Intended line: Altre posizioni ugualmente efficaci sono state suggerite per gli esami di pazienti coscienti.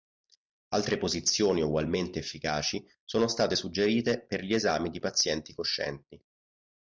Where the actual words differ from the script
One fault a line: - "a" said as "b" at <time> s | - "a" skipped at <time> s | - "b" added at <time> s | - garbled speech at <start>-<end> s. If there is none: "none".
none